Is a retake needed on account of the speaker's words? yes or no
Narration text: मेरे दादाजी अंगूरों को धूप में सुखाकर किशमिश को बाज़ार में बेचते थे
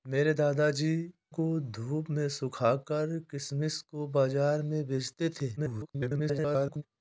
yes